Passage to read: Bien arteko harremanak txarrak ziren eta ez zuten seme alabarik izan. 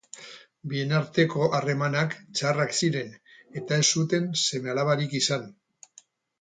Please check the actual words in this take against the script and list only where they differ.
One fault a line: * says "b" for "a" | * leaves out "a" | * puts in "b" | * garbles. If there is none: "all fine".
all fine